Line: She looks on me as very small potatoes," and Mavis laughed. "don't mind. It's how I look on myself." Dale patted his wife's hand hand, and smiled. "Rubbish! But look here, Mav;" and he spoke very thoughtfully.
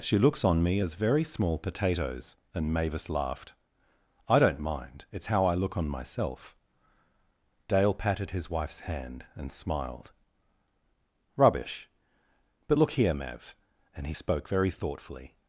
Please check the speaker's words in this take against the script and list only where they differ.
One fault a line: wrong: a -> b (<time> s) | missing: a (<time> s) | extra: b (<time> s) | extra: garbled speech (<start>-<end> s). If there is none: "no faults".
extra: I (4.3 s)
missing: hand (9.2 s)